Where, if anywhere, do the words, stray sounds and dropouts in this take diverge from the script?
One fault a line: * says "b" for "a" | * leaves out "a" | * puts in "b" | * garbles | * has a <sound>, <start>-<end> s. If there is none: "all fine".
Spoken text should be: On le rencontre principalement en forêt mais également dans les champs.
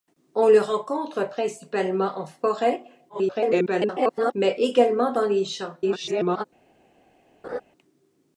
* garbles
* garbles
* has a laugh, 7.4-7.6 s